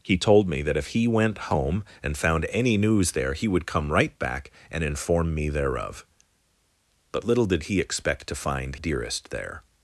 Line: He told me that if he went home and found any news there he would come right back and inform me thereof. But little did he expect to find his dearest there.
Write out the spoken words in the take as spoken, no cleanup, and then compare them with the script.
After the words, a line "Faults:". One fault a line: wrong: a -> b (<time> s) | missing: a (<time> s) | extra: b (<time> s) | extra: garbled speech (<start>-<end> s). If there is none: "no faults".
He told me that if he went home and found any news there he would come right back and inform me thereof. But little did he expect to find dearest there.
Faults:
missing: his (8.8 s)